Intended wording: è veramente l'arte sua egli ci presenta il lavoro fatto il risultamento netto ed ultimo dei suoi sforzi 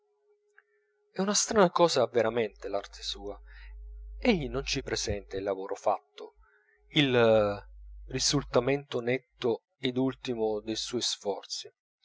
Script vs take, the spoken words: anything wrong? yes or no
yes